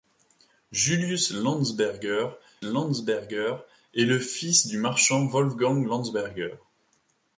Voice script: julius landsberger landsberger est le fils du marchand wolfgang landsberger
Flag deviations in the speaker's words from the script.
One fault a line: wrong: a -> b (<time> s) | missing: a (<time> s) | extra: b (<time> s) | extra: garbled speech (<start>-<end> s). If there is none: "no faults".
no faults